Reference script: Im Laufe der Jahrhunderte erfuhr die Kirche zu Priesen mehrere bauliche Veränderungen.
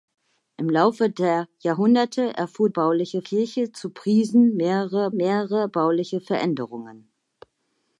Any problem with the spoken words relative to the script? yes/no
yes